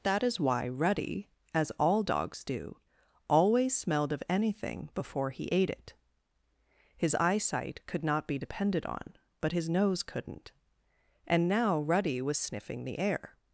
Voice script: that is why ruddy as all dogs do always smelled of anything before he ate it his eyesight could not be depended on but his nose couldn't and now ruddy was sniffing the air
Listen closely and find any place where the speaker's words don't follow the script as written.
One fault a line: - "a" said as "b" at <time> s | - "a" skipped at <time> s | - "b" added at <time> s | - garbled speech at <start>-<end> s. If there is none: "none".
none